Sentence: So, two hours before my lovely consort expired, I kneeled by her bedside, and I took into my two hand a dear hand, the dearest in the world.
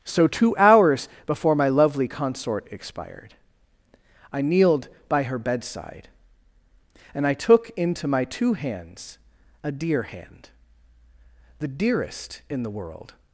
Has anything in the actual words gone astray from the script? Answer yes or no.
yes